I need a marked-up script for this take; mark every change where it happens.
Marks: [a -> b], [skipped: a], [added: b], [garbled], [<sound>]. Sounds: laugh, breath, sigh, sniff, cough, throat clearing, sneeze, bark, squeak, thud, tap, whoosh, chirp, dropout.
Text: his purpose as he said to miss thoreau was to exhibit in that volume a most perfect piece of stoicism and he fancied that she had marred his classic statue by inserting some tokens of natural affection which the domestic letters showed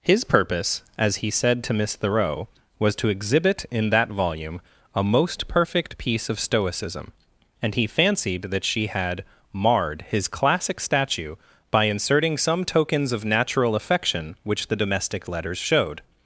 his purpose as he said to miss thoreau was to exhibit in that volume a most perfect piece of stoicism and he fancied that she had marred his classic statue by inserting some tokens of natural affection which the domestic letters showed